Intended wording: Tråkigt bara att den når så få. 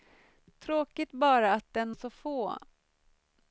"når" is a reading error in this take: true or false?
true